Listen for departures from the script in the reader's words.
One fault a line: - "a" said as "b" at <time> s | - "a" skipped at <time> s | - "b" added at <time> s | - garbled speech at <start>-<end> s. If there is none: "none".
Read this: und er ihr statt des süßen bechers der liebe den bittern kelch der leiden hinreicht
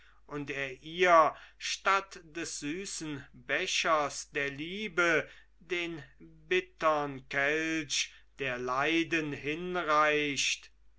none